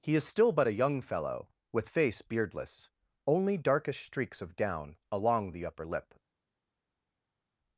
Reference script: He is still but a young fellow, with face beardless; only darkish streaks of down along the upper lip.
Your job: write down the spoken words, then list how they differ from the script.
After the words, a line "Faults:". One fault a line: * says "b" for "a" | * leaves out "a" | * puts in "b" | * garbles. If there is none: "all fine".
He is still but a young fellow, with face beardless; only darkish streaks of down along the upper lip.
Faults:
all fine